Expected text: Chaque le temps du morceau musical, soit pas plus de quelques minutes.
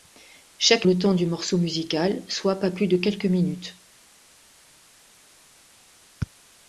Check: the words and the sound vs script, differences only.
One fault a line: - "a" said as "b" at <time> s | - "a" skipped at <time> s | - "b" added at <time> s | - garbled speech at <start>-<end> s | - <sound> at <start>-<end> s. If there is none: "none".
none